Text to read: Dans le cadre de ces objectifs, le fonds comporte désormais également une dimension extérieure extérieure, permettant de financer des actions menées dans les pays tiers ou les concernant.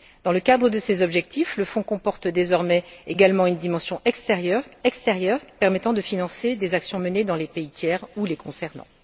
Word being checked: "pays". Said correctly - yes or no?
yes